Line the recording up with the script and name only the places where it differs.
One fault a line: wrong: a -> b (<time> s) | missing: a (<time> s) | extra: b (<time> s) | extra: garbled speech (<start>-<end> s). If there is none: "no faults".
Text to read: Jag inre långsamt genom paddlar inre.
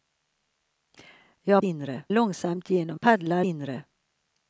no faults